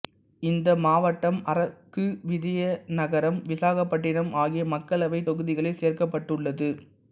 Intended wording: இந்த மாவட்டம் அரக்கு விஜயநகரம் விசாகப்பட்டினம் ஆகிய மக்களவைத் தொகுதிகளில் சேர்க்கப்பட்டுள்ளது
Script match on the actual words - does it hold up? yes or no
yes